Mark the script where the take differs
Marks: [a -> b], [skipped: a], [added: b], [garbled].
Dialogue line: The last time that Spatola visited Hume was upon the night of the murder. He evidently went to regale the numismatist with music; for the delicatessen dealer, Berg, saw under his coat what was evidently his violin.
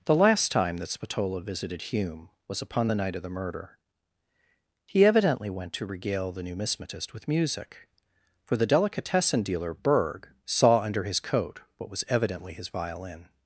The last time that Spatola visited Hume was upon the night of the murder. He evidently went to regale the numismatist with music; for the delicatessen dealer, Berg, saw under his coat what was evidently his violin.